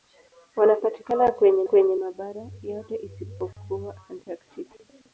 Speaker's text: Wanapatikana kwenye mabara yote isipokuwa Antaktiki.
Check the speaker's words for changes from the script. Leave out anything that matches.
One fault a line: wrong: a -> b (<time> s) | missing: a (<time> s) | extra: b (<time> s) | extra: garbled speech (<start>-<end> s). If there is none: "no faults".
extra: kwenye (1.6 s)